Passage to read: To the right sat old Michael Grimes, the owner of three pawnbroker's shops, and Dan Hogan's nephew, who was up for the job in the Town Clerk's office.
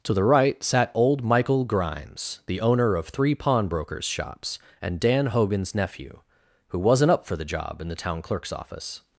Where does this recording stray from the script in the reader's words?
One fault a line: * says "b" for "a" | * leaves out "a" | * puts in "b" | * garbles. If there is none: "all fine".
* says "wasn't" for "was"